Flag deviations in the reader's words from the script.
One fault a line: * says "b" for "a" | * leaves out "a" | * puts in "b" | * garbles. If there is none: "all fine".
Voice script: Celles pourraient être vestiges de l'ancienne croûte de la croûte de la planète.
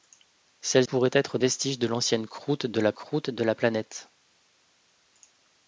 all fine